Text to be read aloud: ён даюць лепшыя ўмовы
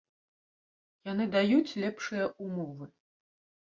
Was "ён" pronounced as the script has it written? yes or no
no